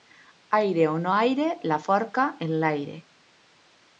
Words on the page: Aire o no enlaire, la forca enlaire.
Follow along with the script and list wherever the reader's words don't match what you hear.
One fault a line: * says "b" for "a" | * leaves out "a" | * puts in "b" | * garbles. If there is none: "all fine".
* says "aire" for "enlaire"